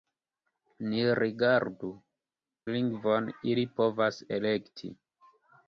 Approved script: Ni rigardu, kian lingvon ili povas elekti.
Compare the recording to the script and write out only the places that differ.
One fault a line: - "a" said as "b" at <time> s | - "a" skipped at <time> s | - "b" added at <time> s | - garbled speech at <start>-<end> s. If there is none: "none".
- "kian" skipped at 1.9 s